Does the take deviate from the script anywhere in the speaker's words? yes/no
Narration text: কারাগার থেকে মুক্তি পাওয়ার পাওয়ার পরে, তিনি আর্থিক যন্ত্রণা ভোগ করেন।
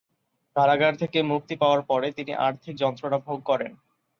yes